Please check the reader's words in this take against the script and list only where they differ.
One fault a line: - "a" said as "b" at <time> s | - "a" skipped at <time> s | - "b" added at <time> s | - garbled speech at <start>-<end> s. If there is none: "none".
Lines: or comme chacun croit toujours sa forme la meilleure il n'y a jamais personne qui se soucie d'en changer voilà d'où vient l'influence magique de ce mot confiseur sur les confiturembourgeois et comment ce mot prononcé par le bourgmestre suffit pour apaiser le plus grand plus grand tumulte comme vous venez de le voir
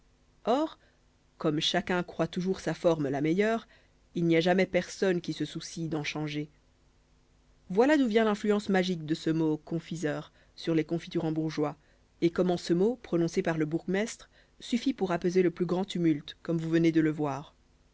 - "plus grand" skipped at 15.8 s